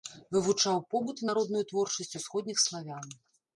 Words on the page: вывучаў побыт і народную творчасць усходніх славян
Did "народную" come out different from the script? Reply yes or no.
no